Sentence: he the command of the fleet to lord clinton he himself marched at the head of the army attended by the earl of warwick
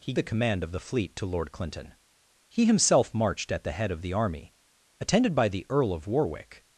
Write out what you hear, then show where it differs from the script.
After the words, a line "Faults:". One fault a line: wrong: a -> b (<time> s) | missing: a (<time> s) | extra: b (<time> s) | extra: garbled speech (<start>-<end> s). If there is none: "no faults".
he the command of the fleet to lord clinton he himself marched at the head of the army attended by the earl of warwick
Faults:
no faults